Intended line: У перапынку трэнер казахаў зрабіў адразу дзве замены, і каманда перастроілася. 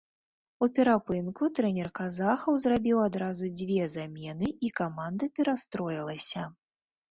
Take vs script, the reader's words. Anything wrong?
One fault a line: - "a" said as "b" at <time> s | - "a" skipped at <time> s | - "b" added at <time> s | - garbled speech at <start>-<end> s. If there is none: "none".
none